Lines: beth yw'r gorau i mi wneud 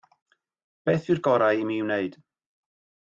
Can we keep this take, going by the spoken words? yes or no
yes